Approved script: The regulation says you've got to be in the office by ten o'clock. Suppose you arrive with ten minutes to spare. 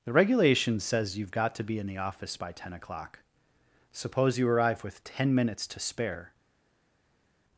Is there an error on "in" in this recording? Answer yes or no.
no